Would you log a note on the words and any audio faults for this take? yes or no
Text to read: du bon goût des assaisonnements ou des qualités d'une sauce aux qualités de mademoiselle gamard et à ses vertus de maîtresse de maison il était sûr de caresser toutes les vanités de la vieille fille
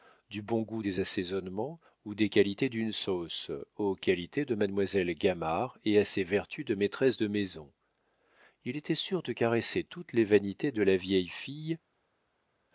no